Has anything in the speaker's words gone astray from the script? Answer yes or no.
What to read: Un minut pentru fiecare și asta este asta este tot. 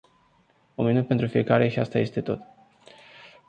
yes